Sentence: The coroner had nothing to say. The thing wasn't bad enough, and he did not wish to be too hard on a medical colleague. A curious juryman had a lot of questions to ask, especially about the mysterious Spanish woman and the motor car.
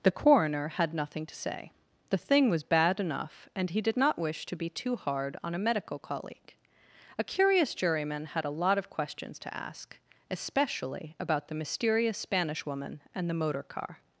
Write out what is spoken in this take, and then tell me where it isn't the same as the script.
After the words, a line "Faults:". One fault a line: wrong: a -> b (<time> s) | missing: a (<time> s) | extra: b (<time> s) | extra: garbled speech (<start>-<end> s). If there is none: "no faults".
The coroner had nothing to say. The thing was bad enough, and he did not wish to be too hard on a medical colleague. A curious juryman had a lot of questions to ask, especially about the mysterious Spanish woman and the motor car.
Faults:
wrong: wasn't -> was (2.5 s)